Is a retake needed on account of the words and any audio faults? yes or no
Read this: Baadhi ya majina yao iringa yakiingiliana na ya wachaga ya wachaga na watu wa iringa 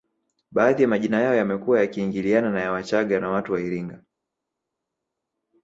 yes